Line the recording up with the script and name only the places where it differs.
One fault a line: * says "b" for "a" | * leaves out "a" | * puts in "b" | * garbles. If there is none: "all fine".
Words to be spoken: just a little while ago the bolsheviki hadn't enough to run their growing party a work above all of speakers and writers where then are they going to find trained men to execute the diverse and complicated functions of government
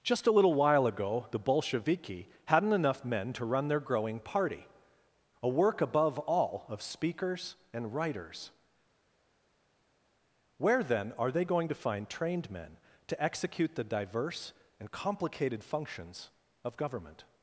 * puts in "men"